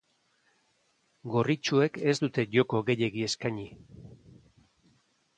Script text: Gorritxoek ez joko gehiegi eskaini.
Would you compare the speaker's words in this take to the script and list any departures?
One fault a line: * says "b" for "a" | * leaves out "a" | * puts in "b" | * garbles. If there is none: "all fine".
* puts in "dute"